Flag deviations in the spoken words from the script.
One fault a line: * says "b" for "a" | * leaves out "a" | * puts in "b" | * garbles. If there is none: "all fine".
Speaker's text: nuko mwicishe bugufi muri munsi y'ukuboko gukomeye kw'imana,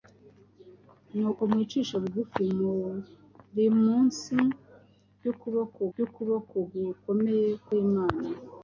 * puts in "y'ukuboko"